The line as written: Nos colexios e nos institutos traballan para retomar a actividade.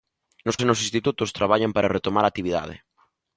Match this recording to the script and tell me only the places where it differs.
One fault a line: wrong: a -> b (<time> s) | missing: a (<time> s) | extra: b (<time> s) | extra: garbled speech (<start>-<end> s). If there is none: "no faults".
missing: colexios (0.6 s)